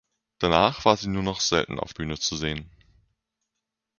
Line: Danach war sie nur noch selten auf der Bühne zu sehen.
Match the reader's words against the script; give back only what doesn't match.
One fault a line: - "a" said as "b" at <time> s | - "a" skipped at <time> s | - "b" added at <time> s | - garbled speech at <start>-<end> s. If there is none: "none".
- "der" skipped at 1.9 s